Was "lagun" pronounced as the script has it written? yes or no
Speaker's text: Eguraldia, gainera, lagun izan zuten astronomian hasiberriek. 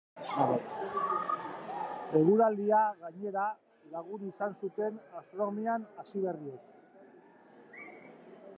yes